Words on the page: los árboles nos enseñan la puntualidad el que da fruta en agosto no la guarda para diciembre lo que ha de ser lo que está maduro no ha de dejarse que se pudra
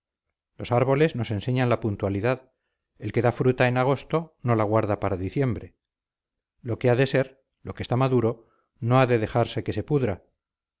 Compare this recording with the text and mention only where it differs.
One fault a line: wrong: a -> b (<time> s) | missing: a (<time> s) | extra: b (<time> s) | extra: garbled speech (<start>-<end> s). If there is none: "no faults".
no faults